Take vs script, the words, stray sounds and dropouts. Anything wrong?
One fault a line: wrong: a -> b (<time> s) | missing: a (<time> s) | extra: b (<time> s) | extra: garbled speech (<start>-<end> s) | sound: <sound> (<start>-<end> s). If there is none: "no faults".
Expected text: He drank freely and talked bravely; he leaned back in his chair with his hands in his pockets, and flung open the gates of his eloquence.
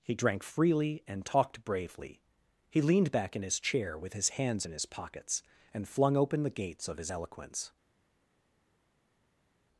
no faults